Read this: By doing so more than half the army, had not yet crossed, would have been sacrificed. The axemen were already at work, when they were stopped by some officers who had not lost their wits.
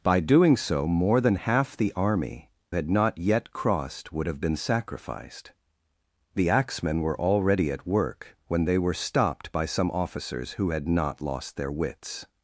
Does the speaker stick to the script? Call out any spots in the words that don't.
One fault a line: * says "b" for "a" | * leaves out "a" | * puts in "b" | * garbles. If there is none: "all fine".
all fine